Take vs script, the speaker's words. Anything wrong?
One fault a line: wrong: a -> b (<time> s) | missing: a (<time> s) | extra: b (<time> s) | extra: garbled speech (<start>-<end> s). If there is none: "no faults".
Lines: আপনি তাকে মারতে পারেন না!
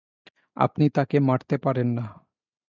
no faults